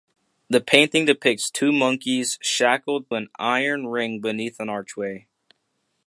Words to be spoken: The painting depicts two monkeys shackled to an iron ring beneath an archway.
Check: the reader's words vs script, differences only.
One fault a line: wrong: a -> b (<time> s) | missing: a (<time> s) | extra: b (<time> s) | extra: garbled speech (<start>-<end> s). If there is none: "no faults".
missing: to (3.1 s)